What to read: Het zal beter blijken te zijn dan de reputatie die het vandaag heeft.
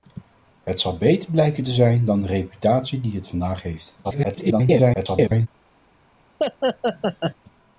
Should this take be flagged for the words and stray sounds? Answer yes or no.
yes